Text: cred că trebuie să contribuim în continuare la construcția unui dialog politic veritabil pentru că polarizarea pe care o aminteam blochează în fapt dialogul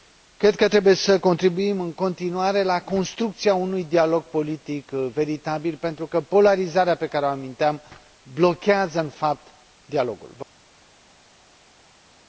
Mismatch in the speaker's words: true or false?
false